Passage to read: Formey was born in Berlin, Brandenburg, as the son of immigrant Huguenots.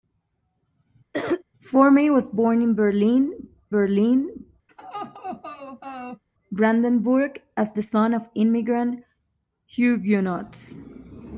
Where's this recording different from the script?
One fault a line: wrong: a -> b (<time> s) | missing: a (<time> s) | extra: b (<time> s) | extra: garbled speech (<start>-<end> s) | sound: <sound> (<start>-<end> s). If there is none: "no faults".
sound: cough (1.1-1.4 s)
extra: Berlin (3.7 s)
sound: laugh (4.7-6.2 s)